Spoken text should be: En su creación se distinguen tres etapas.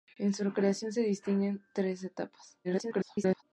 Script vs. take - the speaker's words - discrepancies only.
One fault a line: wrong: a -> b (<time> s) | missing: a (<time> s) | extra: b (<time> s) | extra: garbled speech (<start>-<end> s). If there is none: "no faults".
extra: garbled speech (2.6-3.4 s)